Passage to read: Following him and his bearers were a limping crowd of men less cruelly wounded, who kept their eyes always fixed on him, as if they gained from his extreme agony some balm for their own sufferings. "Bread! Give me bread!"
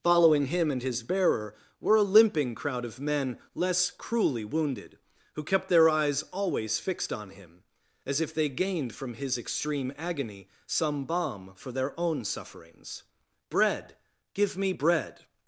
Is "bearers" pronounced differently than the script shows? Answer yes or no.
yes